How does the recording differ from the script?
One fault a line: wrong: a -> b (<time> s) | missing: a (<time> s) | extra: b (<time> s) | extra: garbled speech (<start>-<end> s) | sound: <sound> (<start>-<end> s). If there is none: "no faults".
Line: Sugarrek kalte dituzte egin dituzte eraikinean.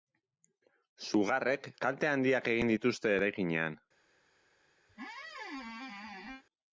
wrong: dituzte -> handiak (2.1 s)
sound: squeak (4.9-6.4 s)